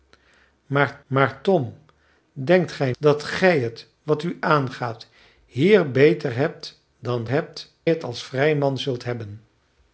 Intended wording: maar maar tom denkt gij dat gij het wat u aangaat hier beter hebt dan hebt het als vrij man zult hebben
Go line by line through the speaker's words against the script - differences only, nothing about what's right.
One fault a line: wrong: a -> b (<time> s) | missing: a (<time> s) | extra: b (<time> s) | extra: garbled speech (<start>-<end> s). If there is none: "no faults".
no faults